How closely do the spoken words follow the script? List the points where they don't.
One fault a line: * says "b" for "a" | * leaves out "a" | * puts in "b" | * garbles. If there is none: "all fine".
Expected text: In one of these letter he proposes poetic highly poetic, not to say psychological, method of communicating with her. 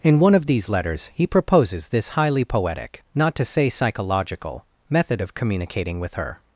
* says "letters" for "letter"
* says "this" for "poetic"